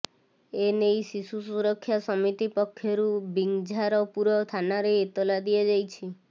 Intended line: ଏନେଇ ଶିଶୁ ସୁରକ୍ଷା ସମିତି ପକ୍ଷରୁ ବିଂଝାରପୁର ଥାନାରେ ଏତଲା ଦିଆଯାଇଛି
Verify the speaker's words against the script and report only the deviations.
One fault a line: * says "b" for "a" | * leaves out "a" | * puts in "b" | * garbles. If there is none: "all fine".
all fine